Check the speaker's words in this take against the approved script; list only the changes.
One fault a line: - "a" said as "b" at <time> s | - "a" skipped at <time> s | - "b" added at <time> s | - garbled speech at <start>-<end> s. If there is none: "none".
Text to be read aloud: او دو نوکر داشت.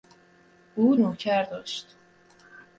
- "دو" skipped at 0.9 s